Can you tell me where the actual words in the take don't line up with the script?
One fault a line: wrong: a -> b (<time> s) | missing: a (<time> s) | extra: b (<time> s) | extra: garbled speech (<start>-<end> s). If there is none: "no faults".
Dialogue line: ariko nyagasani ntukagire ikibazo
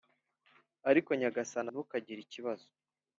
no faults